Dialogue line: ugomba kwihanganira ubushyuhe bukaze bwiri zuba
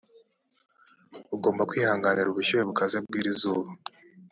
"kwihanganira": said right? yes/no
yes